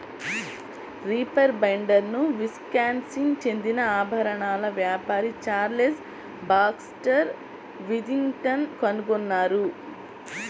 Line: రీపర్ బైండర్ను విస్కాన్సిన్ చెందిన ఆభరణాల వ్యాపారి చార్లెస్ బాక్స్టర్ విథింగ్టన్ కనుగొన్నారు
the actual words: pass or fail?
pass